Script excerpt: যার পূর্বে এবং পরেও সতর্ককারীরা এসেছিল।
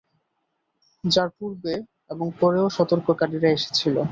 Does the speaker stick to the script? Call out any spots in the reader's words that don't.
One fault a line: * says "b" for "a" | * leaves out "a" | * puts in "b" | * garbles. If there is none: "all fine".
all fine